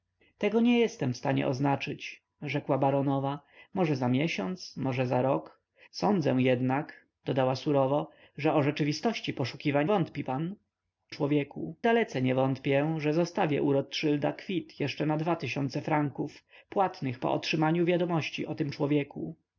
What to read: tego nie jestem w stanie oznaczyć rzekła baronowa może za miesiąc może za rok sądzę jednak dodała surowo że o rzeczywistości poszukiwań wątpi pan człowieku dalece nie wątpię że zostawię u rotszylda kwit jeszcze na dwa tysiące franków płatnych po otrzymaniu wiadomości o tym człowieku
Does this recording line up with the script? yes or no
yes